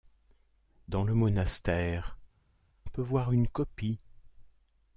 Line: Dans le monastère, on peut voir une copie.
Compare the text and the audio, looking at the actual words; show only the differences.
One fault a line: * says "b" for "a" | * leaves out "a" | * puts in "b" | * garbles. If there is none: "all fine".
* leaves out "on"